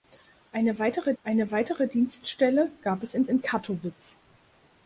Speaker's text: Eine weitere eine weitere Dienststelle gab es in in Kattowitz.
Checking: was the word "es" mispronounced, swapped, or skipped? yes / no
no